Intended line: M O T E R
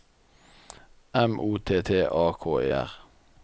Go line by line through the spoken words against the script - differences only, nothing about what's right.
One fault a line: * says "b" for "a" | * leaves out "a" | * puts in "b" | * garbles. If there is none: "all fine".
* puts in "T A K"